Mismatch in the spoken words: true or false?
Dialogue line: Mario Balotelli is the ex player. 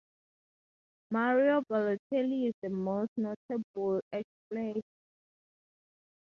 true